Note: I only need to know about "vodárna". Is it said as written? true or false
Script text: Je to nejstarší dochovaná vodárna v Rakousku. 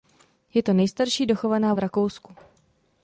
false